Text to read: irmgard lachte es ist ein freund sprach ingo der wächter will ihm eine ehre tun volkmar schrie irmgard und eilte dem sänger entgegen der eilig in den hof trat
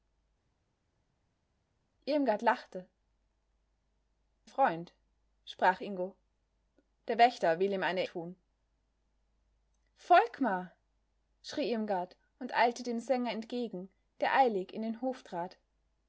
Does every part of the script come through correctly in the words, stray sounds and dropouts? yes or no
no